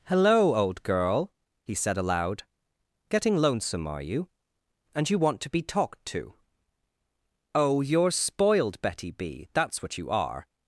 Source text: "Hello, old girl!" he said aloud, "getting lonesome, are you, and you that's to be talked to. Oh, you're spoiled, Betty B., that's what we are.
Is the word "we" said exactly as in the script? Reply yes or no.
no